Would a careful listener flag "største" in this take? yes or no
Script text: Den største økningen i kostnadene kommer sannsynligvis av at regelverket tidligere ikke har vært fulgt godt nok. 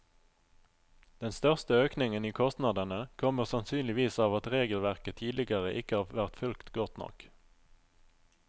no